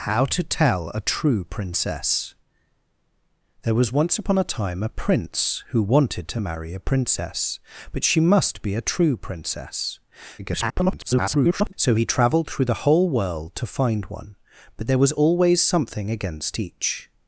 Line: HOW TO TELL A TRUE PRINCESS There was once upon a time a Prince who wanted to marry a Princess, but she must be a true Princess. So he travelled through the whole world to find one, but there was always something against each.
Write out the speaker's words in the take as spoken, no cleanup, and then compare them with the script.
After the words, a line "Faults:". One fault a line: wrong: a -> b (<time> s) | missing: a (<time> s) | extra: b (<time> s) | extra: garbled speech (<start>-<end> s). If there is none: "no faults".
HOW TO TELL A TRUE PRINCESS There was once upon a time a Prince who wanted to marry a Princess, but she must be a true Princess. [garbled] So he travelled through the whole world to find one, but there was always something against each.
Faults:
extra: garbled speech (10.4-11.7 s)